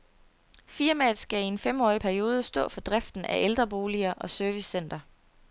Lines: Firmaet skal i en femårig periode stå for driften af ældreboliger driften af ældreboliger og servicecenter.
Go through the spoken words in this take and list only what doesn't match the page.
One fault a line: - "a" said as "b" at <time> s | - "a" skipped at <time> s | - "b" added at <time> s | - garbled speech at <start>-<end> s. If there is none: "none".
- "driften af ældreboliger" skipped at 4.1 s